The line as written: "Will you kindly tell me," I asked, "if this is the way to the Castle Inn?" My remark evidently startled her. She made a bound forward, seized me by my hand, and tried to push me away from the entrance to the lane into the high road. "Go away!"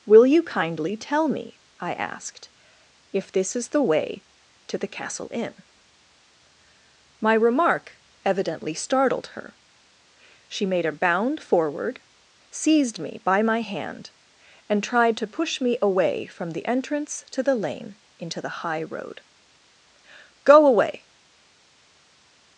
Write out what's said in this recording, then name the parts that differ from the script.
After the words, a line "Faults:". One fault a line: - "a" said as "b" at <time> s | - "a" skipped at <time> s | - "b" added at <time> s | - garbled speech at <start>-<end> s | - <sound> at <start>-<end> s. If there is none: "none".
"Will you kindly tell me," I asked, "if this is the way to the Castle Inn?" My remark evidently startled her. She made a bound forward, seized me by my hand, and tried to push me away from the entrance to the lane into the high road. "Go away!"
Faults:
none